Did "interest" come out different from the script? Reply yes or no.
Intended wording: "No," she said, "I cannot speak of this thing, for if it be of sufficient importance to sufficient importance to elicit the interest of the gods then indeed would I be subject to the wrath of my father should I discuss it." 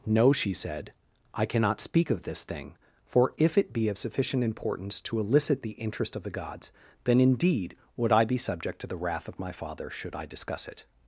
no